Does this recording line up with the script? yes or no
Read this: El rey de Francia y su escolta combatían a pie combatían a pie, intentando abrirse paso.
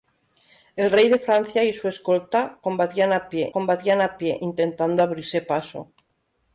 yes